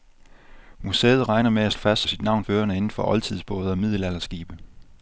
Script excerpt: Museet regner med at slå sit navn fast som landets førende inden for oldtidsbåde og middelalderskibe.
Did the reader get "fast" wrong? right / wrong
wrong